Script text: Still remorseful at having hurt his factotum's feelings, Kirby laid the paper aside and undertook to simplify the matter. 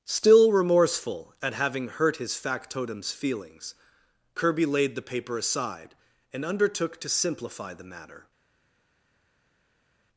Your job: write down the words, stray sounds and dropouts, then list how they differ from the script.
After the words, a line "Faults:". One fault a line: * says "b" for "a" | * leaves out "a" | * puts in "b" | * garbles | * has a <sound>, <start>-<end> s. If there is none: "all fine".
Still remorseful at having hurt his factotum's feelings, Kirby laid the paper aside and undertook to simplify the matter.
Faults:
all fine